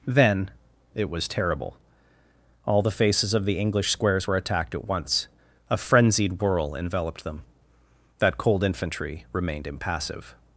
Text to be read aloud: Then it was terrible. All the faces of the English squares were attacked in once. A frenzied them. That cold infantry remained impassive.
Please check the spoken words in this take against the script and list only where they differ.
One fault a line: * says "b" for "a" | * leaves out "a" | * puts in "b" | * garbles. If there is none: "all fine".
* says "at" for "in"
* puts in "whirl enveloped"